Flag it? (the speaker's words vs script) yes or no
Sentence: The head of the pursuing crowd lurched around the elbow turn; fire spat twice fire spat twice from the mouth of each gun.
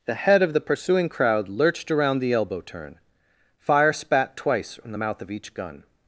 yes